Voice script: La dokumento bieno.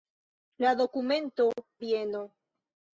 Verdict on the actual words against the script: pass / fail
pass